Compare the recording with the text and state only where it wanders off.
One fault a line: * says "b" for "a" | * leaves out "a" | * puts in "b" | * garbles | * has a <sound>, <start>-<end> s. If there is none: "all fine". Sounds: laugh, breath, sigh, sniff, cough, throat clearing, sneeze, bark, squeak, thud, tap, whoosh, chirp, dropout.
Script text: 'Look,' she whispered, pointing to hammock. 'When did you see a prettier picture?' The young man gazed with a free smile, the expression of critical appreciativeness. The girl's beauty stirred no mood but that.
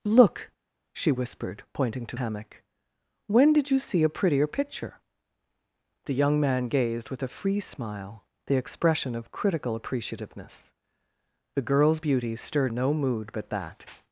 all fine